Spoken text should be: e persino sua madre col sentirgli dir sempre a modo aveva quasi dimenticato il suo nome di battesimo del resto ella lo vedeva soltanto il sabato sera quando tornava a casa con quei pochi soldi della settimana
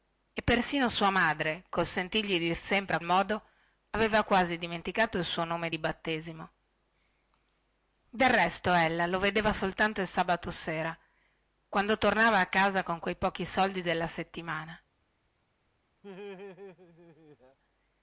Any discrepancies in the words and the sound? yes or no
yes